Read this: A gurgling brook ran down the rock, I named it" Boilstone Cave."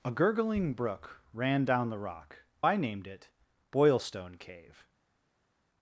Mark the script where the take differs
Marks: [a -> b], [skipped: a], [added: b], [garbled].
A gurgling brook ran down the rock, I named it" Boilstone Cave."